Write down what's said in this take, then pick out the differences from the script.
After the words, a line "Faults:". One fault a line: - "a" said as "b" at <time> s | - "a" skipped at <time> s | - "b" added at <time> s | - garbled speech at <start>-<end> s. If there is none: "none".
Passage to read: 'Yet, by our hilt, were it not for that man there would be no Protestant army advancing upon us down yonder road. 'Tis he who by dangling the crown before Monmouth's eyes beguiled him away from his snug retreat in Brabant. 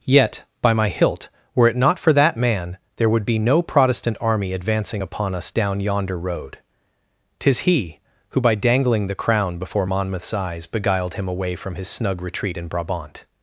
'Yet, by my hilt, were it not for that man there would be no Protestant army advancing upon us down yonder road. 'Tis he who by dangling the crown before Monmouth's eyes beguiled him away from his snug retreat in Brabant.
Faults:
- "our" said as "my" at 0.7 s